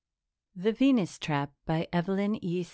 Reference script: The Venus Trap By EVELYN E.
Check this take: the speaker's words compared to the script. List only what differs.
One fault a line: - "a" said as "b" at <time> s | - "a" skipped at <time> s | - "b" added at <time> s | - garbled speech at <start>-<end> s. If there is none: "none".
none